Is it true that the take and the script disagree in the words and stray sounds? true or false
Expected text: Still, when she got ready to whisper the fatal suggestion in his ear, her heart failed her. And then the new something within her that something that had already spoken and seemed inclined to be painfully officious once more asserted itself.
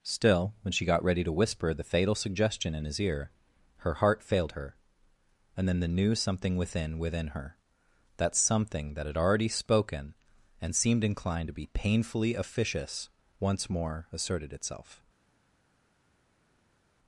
true